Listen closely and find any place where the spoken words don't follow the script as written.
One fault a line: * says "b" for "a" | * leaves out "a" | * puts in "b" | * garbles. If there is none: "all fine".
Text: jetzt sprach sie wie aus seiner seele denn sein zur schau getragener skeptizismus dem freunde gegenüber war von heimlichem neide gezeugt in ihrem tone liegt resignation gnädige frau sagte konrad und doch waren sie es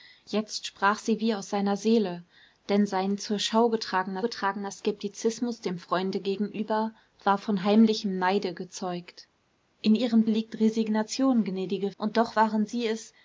* puts in "getragener"
* leaves out "tone"
* leaves out "frau sagte konrad"